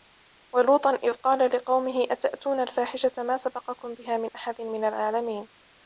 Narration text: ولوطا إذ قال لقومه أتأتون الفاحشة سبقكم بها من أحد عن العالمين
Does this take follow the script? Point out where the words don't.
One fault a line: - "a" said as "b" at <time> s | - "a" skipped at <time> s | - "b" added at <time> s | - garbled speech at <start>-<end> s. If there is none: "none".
- "ما" added at 3.2 s
- "عن" said as "من" at 4.6 s